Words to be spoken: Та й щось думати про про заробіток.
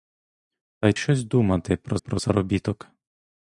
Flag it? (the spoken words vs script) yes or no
no